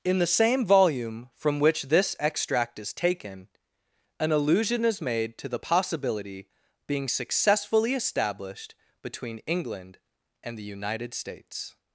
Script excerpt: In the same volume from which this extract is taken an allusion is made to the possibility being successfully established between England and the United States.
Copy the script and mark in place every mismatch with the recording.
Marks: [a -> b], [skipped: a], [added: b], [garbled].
In the same volume from which this extract is taken an allusion is made to the possibility being successfully established between England and the United States.